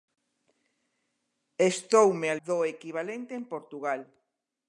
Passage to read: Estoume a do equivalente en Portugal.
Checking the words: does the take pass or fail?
pass